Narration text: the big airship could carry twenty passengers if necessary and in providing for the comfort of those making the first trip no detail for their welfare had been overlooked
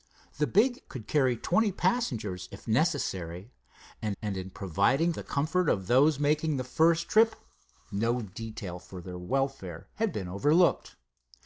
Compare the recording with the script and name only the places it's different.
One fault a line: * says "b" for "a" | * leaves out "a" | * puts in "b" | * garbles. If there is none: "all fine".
* leaves out "airship"
* puts in "and"
* leaves out "for"